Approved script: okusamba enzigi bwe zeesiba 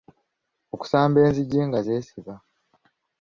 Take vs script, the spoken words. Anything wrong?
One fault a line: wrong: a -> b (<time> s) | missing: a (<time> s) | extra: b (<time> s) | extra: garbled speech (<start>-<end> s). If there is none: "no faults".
wrong: bwe -> nga (1.7 s)